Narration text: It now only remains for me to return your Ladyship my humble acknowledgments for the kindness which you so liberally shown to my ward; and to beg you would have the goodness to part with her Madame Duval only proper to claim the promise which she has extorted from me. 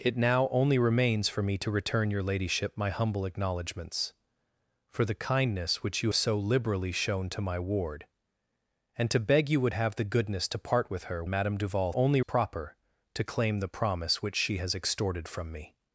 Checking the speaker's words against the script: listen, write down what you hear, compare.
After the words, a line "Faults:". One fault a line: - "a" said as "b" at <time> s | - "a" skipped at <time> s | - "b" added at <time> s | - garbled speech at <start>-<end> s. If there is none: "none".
It now only remains for me to return your Ladyship my humble acknowledgments for the kindness which you so liberally shown to my ward; and to beg you would have the goodness to part with her Madame Duval only proper to claim the promise which she has extorted from me.
Faults:
none